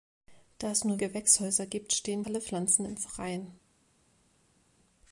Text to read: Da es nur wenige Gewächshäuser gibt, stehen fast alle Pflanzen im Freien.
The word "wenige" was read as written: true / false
false